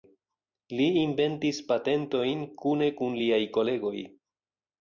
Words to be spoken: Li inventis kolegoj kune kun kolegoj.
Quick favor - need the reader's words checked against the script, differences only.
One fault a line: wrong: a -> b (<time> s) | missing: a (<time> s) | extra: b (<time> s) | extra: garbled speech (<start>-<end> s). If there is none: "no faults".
wrong: kolegoj -> patentojn (1.7 s)
extra: liaj (3.2 s)